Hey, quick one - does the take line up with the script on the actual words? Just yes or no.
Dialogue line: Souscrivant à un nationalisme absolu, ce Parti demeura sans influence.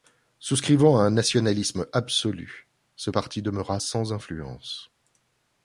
yes